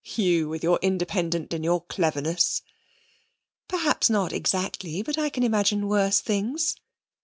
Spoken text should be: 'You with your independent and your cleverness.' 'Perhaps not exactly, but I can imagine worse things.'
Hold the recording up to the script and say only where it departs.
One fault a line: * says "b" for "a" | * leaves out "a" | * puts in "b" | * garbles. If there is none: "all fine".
all fine